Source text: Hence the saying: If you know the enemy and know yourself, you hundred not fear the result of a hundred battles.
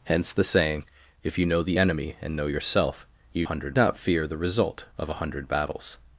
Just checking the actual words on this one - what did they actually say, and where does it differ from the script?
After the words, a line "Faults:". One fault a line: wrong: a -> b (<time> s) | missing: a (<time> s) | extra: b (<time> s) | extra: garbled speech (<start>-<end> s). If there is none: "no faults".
Hence the saying: If you know the enemy and know yourself, you hundred not fear the result of a hundred battles.
Faults:
no faults